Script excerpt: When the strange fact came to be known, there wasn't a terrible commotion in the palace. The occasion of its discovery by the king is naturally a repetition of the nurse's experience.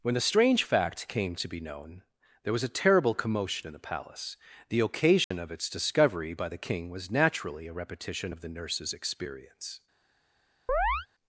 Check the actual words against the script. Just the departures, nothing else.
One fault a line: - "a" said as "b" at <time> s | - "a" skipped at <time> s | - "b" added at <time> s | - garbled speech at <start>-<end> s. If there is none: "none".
- "wasn't" said as "was" at 2.5 s
- "is" said as "was" at 6.9 s